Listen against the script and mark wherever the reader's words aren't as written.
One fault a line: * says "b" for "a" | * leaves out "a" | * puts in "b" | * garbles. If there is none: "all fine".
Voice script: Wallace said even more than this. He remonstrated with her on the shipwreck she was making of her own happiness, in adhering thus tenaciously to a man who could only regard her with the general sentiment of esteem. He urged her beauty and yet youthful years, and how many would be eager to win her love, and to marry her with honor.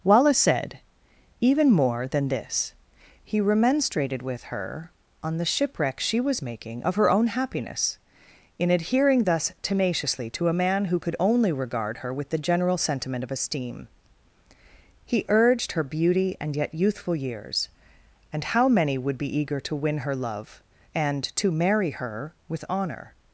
all fine